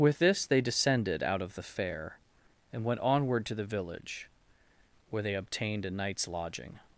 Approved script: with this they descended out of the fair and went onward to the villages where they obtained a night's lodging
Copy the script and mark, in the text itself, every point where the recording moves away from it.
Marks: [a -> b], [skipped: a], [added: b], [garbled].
with this they descended out of the fair and went onward to the [villages -> village] where they obtained a night's lodging